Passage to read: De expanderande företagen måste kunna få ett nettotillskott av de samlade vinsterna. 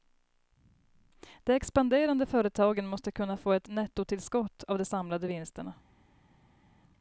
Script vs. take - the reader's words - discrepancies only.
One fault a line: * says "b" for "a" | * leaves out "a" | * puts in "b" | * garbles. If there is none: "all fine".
all fine